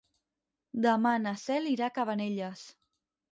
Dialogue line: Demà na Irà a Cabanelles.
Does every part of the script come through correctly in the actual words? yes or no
no